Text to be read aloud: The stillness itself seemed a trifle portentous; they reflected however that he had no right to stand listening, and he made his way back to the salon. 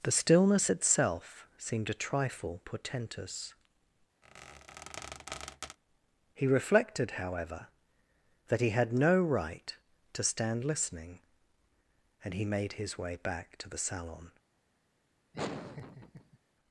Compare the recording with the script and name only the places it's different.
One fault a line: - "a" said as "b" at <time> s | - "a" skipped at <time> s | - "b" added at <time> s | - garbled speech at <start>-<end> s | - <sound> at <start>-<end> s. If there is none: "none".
- squeak at 4.2-5.8 s
- "they" said as "he" at 6.3 s
- laugh at 15.3-16.4 s